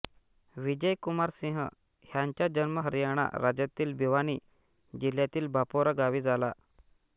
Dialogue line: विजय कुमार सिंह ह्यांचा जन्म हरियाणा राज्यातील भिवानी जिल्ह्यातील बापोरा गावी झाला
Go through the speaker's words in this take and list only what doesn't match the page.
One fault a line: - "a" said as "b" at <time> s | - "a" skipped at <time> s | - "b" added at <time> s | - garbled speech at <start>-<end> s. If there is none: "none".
none